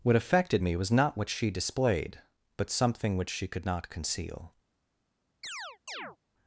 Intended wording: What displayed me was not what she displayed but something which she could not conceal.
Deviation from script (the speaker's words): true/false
true